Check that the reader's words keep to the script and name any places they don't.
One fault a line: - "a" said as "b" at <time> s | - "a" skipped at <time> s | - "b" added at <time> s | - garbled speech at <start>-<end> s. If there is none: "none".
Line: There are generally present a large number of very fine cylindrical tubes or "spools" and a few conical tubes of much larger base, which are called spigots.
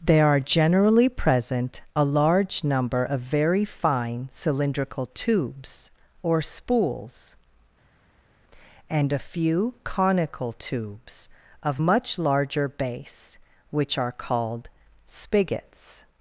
none